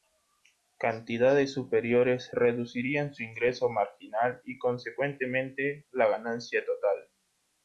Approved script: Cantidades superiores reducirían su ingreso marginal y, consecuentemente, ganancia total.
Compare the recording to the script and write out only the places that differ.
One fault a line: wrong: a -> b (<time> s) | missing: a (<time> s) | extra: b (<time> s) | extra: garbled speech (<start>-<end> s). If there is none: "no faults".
extra: la (5.9 s)